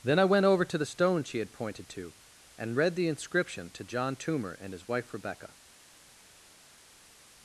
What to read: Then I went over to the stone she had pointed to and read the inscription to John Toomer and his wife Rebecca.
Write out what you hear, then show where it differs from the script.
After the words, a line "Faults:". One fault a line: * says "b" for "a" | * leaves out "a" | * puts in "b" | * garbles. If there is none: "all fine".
Then I went over to the stone she had pointed to and read the inscription to John Toomer and his wife Rebecca.
Faults:
all fine